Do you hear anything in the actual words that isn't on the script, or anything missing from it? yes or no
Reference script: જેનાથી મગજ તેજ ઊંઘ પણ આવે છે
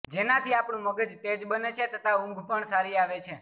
yes